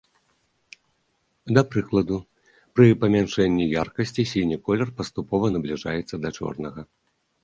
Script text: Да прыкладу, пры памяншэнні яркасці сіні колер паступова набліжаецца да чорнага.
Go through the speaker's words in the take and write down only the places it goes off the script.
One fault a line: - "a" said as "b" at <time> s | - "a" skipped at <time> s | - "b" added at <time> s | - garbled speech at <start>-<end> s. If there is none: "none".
none